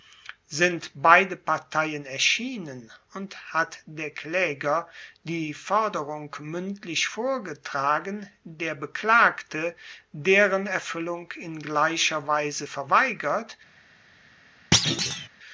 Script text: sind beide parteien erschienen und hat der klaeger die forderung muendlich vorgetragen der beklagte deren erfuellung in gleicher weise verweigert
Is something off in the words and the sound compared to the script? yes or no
yes